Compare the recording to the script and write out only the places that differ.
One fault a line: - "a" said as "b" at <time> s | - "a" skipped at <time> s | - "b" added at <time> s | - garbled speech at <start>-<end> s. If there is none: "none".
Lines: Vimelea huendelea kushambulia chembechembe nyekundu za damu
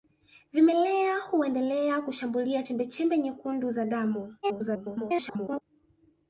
- garbled speech at 4.4-5.6 s